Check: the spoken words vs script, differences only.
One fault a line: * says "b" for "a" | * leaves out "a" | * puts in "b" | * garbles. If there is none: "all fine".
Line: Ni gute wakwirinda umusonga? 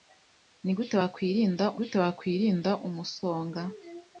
* puts in "gute wakwirinda"